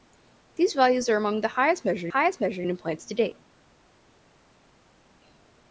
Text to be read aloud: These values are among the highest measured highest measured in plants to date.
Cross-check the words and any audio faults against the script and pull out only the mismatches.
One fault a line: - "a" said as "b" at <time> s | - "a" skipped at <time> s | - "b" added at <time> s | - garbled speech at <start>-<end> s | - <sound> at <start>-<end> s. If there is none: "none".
none